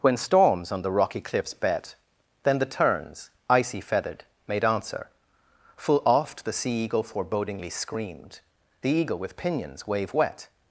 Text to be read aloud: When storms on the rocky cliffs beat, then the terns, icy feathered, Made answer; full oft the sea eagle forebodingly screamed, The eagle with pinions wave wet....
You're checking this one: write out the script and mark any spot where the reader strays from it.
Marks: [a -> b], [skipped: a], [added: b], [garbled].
When storms on the rocky cliffs [beat, -> bet] then the terns, icy feathered, Made answer; full oft the sea eagle forebodingly screamed, The eagle with pinions wave wet....